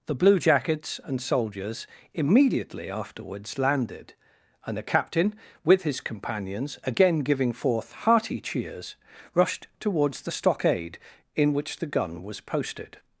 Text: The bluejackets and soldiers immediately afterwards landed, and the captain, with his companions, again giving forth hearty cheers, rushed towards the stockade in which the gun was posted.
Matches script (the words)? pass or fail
pass